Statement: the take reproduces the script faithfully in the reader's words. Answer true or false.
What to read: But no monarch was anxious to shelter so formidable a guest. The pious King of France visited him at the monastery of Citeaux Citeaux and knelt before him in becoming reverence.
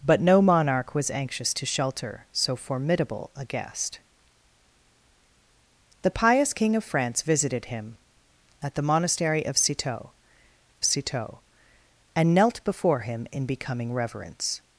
true